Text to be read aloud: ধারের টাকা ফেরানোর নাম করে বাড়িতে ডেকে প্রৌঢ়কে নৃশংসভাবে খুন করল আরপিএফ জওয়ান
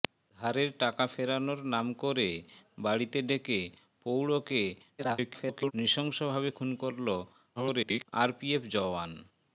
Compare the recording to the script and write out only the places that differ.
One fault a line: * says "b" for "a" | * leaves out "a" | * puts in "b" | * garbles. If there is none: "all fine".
* garbles
* garbles